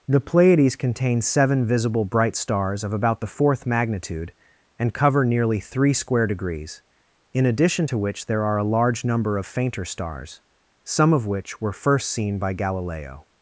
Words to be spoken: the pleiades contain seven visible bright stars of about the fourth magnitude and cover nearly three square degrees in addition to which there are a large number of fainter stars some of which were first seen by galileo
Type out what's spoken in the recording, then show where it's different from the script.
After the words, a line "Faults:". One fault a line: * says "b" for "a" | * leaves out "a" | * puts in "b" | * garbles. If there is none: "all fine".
the pleiades contain seven visible bright stars of about the fourth magnitude and cover nearly three square degrees in addition to which there are a large number of fainter stars some of which were first seen by galileo
Faults:
all fine